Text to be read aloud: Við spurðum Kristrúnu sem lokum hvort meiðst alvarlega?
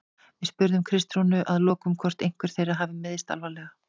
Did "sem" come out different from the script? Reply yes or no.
yes